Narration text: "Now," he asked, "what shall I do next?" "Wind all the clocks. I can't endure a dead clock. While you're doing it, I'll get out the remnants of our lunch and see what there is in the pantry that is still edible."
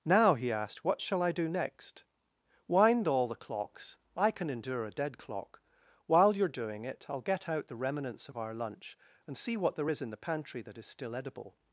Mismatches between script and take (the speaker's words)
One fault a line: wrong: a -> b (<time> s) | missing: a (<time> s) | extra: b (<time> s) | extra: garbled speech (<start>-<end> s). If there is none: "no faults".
wrong: can't -> can (4.3 s)